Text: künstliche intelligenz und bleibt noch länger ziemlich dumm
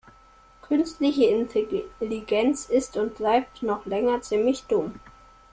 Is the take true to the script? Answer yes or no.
no